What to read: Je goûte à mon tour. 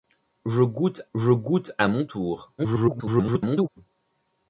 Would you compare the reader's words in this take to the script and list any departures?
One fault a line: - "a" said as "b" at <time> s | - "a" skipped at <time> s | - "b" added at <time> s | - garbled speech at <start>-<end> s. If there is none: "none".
- "je goûte" added at 1.2 s
- garbled speech at 2.6-3.7 s